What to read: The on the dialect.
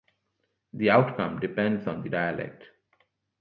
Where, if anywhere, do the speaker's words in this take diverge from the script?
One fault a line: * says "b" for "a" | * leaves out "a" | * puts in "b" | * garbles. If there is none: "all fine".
* puts in "outcome depends"